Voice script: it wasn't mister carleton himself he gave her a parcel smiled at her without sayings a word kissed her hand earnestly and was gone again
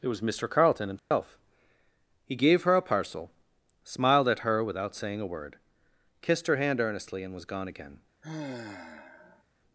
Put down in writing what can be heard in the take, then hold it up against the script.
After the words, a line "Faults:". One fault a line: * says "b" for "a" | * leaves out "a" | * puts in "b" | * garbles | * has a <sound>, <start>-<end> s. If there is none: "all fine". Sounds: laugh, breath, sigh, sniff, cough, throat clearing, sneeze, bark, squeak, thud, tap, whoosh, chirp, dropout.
it was mister carleton himself he gave her a parcel smiled at her without saying a word kissed her hand earnestly and was gone again
Faults:
* says "was" for "wasn't"
* has a dropout, 1.0-1.1 s
* says "saying" for "sayings"
* has a sigh, 8.2-9.4 s